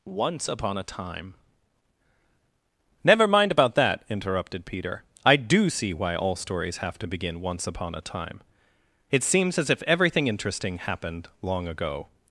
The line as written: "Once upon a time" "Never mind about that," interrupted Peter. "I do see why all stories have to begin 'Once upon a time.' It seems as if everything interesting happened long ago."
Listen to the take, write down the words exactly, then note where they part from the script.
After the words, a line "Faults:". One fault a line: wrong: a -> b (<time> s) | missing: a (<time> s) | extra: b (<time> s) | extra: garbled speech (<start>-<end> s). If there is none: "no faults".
"Once upon a time" "Never mind about that," interrupted Peter. "I do see why all stories have to begin 'Once upon a time.' It seems as if everything interesting happened long ago."
Faults:
no faults